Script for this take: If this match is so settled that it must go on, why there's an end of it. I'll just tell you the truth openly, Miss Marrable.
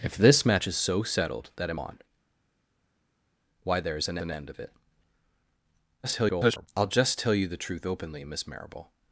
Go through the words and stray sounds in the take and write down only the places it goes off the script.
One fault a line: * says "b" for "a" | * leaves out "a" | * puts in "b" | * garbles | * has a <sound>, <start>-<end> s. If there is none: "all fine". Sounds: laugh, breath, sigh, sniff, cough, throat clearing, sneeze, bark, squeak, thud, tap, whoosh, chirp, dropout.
* leaves out "must go"
* puts in "an"
* garbles